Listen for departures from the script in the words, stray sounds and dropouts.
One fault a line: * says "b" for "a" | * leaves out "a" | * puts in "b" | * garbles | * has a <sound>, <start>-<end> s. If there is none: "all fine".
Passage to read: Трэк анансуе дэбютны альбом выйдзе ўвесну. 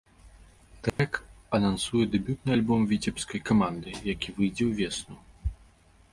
* has a dropout, 0.9-1.0 s
* puts in "віцебскай каманды які"